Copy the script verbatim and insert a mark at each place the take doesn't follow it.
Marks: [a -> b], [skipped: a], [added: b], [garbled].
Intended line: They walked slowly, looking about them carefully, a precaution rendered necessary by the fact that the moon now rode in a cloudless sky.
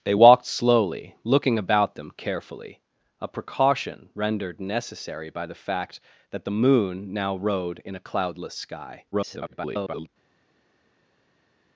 They walked slowly, looking about them carefully, a precaution rendered necessary by the fact that the moon now rode in a cloudless sky. [garbled]